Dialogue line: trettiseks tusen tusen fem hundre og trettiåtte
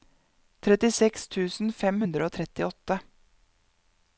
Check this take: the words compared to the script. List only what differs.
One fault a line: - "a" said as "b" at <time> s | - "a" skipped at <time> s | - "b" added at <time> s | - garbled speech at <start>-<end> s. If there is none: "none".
- "tusen" skipped at 1.7 s